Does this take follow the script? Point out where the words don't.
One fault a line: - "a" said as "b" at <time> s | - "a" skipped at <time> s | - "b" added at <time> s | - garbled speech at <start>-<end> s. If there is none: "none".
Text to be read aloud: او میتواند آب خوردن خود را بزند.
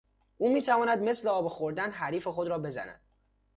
- "مثل" added at 1.0 s
- "حریف" added at 1.9 s